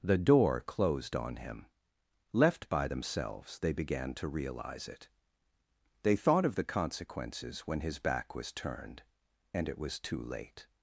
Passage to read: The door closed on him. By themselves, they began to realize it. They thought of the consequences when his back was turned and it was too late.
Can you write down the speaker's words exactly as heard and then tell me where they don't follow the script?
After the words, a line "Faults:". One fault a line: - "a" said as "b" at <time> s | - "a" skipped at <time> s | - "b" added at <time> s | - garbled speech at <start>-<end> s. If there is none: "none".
The door closed on him. Left by themselves, they began to realize it. They thought of the consequences when his back was turned and it was too late.
Faults:
- "Left" added at 2.3 s